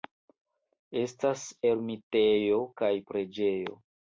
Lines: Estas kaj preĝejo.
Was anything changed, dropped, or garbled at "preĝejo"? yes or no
no